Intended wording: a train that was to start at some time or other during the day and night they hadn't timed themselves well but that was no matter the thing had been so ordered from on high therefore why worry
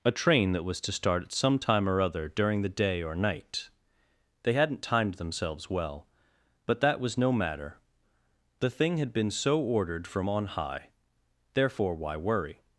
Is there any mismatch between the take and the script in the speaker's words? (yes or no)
yes